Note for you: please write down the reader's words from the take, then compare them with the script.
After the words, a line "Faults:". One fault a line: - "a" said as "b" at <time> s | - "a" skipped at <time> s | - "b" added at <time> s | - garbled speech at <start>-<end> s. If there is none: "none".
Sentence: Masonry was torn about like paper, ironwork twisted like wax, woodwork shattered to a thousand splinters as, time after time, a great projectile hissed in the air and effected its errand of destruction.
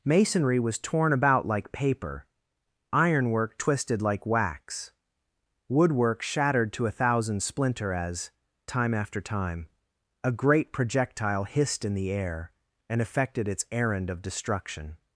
Masonry was torn about like paper, ironwork twisted like wax, woodwork shattered to a thousand splinter as, time after time, a great projectile hissed in the air and effected its errand of destruction.
Faults:
- "splinters" said as "splinter" at 7.4 s